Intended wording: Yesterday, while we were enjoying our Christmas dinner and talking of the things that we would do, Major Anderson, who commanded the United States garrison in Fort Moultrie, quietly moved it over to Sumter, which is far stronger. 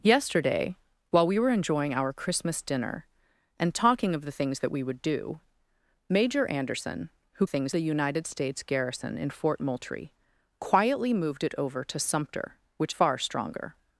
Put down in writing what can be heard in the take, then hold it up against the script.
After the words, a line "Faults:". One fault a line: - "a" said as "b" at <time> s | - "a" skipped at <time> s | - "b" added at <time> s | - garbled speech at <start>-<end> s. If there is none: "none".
Yesterday, while we were enjoying our Christmas dinner and talking of the things that we would do, Major Anderson, who things the United States garrison in Fort Moultrie, quietly moved it over to Sumter, which far stronger.
Faults:
- "commanded" said as "things" at 7.4 s
- "is" skipped at 12.9 s